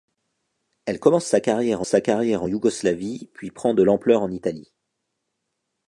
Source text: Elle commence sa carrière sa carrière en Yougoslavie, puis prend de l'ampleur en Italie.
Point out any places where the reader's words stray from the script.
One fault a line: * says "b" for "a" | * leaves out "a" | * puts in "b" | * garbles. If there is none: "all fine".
all fine